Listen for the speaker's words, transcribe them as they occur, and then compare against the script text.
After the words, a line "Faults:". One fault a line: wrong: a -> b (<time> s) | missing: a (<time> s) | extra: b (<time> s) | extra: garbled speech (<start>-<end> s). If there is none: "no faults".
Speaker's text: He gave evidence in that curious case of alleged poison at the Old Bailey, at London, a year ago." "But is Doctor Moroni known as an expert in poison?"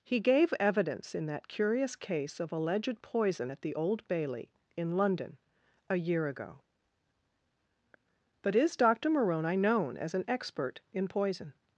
He gave evidence in that curious case of alleged poison at the Old Bailey, in London, a year ago." "But is Doctor Moroni known as an expert in poison?"
Faults:
wrong: at -> in (4.7 s)